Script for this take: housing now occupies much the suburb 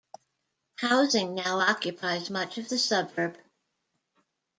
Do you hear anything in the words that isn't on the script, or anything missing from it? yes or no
yes